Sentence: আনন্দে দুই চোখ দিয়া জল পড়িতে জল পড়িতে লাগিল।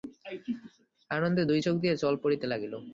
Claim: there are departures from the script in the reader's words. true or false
true